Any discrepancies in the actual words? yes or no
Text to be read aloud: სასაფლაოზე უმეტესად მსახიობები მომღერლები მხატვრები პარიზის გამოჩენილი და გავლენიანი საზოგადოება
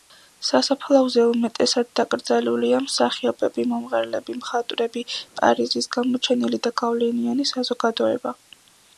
yes